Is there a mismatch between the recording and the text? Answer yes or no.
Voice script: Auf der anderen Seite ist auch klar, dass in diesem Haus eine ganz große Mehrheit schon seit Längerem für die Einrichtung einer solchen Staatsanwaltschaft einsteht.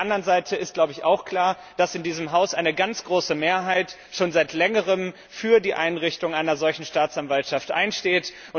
no